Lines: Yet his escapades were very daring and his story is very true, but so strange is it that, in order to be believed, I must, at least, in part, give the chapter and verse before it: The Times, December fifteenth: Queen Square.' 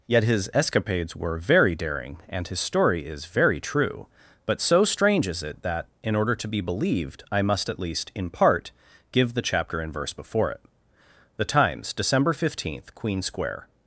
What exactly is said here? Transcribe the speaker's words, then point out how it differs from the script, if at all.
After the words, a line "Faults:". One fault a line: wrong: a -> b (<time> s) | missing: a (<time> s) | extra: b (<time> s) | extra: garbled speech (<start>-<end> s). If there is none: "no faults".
Yet his escapades were very daring and his story is very true, but so strange is it that, in order to be believed, I must, at least, in part, give the chapter and verse before it: The Times, December fifteenth: Queen Square.'
Faults:
no faults